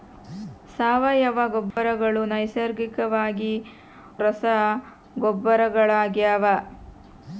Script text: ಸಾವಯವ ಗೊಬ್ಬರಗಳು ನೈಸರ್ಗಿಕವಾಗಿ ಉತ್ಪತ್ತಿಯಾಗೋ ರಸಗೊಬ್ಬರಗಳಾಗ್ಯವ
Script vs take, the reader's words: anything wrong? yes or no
yes